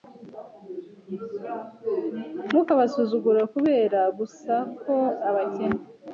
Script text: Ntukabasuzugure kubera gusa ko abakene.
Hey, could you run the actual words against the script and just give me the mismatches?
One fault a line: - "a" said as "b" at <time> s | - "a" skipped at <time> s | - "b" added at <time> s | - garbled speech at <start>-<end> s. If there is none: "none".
none